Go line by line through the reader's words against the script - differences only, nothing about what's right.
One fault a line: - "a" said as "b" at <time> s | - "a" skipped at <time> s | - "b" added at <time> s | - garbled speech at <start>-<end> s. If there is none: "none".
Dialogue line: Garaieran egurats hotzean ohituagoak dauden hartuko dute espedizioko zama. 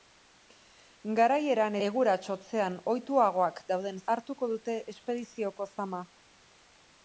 none